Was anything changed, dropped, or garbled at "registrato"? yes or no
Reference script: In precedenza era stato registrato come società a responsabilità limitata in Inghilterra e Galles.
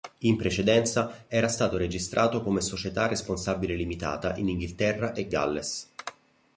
no